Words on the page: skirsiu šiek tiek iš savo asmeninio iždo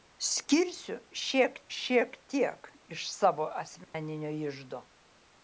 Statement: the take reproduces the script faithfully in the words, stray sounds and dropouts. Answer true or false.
false